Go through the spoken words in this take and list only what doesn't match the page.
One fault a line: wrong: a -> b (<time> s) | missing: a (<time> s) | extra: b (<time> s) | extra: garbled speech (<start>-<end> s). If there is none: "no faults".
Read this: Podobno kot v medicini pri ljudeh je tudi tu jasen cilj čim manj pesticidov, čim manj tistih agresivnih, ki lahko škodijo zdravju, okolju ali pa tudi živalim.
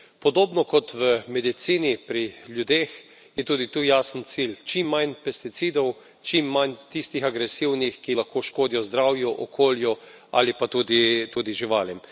no faults